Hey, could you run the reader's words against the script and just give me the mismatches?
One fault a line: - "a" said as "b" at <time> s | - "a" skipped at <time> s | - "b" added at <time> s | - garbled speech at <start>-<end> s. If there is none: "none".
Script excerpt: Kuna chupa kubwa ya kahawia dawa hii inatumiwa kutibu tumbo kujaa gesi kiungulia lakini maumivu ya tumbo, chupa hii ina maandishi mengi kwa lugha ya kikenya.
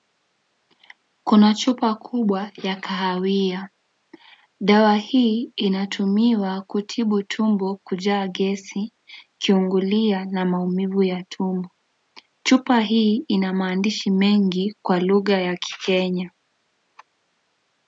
- "lakini" said as "na" at 10.2 s